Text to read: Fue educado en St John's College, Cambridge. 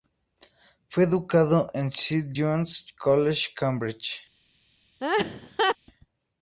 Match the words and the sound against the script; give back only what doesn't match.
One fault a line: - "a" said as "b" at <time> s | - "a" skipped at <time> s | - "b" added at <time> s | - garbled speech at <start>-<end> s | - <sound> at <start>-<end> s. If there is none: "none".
- laugh at 5.0-5.8 s